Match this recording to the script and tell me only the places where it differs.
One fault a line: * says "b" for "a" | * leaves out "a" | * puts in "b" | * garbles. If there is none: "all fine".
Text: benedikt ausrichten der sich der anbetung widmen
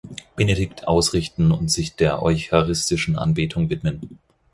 * says "und" for "der"
* puts in "eucharistischen"